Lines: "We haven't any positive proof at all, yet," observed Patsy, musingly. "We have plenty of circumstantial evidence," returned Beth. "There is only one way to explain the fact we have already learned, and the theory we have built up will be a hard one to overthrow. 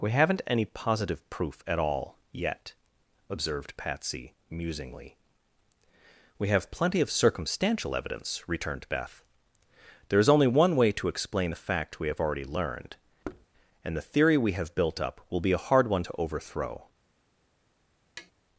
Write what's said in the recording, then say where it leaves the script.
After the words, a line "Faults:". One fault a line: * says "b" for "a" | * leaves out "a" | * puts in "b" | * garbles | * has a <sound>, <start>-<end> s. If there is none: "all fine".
"We haven't any positive proof at all, yet," observed Patsy, musingly. "We have plenty of circumstantial evidence," returned Beth. "There is only one way to explain the fact we have already learned, and the theory we have built up will be a hard one to overthrow.
Faults:
* has a thud, 13.2-13.5 s
* has a tap, 18.2-18.3 s